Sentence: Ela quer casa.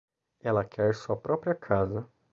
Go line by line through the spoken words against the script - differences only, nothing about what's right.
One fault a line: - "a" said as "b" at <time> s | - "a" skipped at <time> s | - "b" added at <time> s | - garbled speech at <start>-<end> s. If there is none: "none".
- "sua própria" added at 0.9 s